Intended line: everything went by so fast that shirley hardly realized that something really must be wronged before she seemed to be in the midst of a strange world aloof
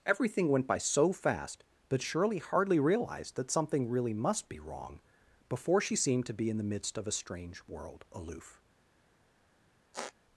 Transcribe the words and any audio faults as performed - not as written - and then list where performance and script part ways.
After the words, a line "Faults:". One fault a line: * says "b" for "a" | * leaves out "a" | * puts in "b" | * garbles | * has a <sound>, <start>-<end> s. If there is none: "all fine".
everything went by so fast that shirley hardly realized that something really must be wrong before she seemed to be in the midst of a strange world aloof
Faults:
* says "wrong" for "wronged"
* has a squeak, 9.9-10.1 s